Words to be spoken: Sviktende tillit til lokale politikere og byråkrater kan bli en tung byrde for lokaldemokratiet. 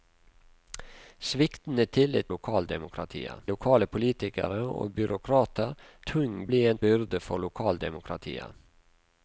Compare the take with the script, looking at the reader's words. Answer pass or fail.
fail